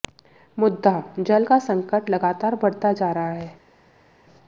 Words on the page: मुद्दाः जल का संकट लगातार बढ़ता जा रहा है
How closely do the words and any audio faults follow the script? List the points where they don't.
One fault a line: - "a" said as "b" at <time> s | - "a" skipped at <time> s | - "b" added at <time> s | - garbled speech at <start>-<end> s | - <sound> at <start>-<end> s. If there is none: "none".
none